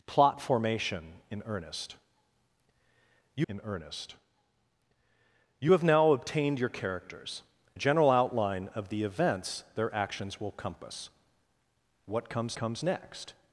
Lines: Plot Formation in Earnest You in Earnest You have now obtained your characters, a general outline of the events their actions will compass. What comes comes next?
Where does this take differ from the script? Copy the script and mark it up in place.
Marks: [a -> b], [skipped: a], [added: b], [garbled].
Plot Formation in Earnest You in Earnest You have now obtained your characters, a general outline of the events their actions will compass. What comes comes next?